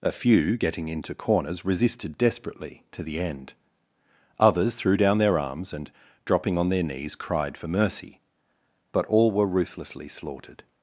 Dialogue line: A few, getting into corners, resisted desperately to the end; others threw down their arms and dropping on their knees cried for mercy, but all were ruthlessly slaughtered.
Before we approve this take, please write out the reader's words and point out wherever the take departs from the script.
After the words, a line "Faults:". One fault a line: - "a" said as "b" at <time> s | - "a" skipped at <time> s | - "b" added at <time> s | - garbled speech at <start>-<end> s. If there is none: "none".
A few, getting into corners, resisted desperately to the end; others threw down their arms and dropping on their knees cried for mercy, but all were ruthlessly slaughtered.
Faults:
none